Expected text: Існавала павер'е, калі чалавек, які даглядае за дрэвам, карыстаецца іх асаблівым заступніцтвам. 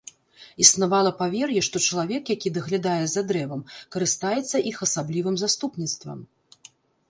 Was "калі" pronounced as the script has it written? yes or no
no